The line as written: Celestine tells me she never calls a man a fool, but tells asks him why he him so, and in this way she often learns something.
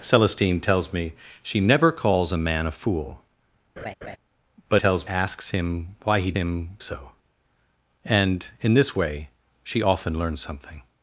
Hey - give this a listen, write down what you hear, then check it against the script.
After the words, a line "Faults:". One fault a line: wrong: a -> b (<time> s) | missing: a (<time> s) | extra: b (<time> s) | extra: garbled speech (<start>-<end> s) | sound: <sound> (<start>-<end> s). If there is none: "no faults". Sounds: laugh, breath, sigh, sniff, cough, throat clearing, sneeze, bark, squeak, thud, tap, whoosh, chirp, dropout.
Celestine tells me she never calls a man a fool, but tells asks him why he him so, and in this way she often learns something.
Faults:
sound: laugh (3.8-4.2 s)